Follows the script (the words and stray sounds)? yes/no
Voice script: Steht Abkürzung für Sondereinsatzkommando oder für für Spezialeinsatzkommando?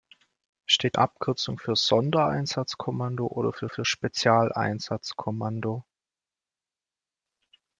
yes